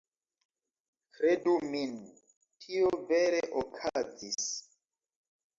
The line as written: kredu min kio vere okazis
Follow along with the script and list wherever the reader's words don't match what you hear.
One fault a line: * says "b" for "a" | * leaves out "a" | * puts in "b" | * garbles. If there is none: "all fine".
* says "tio" for "kio"